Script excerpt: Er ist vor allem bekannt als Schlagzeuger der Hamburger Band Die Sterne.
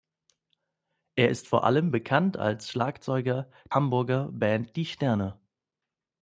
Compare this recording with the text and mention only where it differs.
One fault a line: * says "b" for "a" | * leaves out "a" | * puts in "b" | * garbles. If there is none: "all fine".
* leaves out "der"